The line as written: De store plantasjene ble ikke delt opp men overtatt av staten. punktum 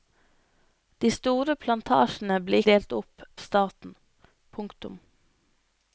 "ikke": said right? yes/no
no